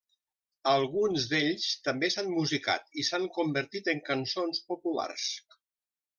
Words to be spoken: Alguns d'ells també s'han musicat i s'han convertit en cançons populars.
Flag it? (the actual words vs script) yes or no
no